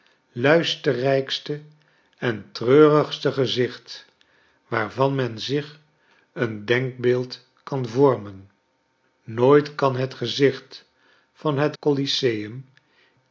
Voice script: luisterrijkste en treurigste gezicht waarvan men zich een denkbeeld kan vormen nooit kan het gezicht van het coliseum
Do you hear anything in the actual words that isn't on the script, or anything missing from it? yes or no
no